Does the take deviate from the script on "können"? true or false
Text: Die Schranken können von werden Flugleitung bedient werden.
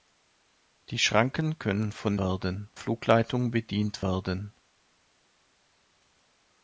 false